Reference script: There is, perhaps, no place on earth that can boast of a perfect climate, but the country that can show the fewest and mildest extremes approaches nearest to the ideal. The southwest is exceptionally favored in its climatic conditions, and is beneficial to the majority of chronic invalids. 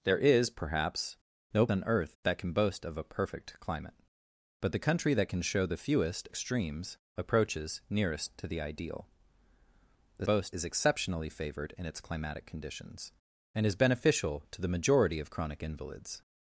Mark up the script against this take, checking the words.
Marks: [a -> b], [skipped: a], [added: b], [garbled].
There is, perhaps, no [skipped: place] on earth that can boast of a perfect climate, but the country that can show the fewest [skipped: and mildest] extremes approaches nearest to the ideal. The [southwest -> boast] is exceptionally favored in its climatic conditions, and is beneficial to the majority of chronic invalids.